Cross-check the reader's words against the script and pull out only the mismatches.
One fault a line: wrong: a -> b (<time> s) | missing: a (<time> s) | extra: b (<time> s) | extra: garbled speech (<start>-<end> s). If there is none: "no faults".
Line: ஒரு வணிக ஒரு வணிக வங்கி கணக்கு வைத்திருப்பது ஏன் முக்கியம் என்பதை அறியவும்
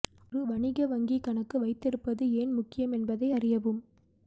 missing: ஒரு வணிக (0.8 s)